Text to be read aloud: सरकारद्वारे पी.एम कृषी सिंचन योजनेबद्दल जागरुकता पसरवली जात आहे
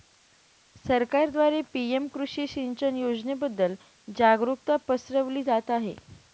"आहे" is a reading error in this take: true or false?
false